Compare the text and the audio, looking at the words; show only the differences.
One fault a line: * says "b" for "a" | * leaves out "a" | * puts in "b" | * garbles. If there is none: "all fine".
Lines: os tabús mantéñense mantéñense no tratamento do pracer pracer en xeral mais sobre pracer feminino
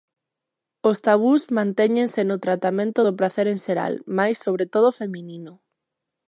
* leaves out "mantéñense"
* leaves out "pracer"
* says "todo" for "pracer"